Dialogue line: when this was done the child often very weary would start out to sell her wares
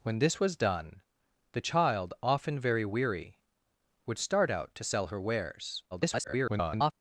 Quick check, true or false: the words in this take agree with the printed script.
false